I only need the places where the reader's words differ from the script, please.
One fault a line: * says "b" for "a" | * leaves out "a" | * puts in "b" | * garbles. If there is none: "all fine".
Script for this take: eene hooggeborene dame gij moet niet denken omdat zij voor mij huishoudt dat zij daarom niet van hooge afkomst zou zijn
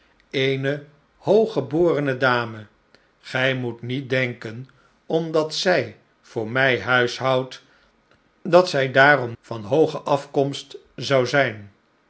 * leaves out "niet"